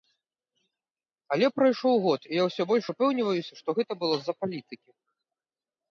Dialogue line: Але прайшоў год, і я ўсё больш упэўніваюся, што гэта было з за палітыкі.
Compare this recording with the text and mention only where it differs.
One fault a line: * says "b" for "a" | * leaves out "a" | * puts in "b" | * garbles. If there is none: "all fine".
all fine